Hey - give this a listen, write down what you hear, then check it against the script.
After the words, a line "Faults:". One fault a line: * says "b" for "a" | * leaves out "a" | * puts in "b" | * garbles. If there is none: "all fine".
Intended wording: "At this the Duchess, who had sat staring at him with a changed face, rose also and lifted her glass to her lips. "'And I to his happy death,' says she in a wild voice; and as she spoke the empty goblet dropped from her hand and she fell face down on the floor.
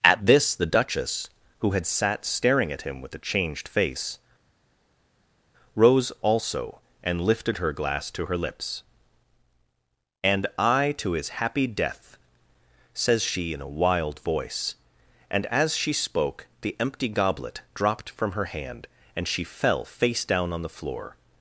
"At this the Duchess, who had sat staring at him with a changed face, rose also and lifted her glass to her lips. "'And I to his happy death,' says she in a wild voice; and as she spoke the empty goblet dropped from her hand and she fell face down on the floor.
Faults:
all fine